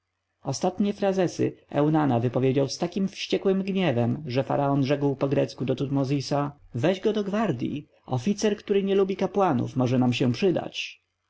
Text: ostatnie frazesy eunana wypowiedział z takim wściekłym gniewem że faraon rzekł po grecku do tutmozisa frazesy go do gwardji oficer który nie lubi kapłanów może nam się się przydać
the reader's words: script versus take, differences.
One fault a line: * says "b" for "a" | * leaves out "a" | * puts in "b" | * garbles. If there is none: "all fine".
* says "weź" for "frazesy"
* leaves out "się"